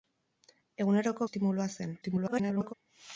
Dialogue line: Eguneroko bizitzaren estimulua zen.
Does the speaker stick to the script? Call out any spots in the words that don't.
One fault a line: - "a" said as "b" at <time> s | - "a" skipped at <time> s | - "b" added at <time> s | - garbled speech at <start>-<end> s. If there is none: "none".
- "bizitzaren" skipped at 1.3 s
- garbled speech at 2.0-2.7 s